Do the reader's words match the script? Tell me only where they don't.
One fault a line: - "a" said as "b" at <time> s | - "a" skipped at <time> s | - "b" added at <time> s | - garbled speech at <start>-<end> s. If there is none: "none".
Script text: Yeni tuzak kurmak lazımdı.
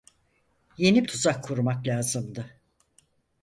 none